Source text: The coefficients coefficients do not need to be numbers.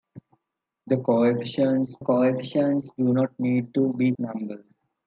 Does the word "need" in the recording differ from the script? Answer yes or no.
no